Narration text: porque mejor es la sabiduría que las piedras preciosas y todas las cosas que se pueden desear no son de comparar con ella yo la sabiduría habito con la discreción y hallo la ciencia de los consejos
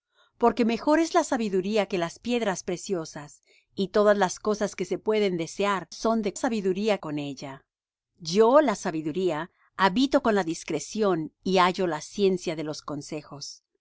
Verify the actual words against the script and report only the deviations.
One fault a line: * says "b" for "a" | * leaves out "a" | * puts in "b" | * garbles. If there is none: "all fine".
* leaves out "no"
* says "sabiduría" for "comparar"